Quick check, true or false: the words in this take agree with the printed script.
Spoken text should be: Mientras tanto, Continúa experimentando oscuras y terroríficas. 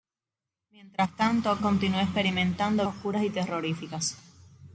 true